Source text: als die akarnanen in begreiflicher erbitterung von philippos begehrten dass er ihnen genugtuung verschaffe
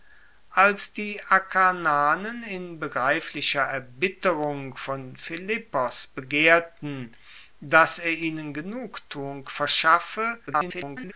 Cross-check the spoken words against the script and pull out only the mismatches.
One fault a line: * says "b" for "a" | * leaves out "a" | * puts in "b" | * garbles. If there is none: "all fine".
* garbles